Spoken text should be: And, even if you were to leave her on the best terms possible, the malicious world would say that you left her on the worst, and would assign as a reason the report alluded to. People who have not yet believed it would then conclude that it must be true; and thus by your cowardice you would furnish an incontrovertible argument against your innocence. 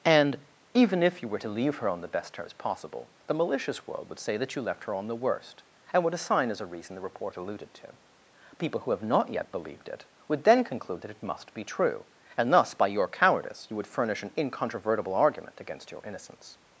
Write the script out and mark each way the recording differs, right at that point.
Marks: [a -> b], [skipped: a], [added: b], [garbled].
And, even if you were to leave her on the best terms possible, the malicious world would say that you left her on the worst, and would assign as a reason the report alluded to. People who have not yet believed it would then conclude that it must be true; and thus by your cowardice you would furnish an incontrovertible argument against your innocence.